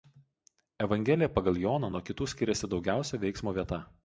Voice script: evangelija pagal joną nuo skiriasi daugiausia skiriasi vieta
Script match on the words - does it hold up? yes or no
no